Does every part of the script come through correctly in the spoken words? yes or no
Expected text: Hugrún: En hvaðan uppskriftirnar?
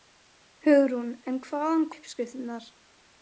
yes